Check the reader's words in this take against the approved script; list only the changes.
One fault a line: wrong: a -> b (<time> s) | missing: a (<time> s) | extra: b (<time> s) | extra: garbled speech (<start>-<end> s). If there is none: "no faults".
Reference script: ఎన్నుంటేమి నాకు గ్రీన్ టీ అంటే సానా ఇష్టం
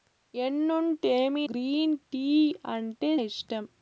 missing: నాకు (1.4 s)
missing: సానా (3.1 s)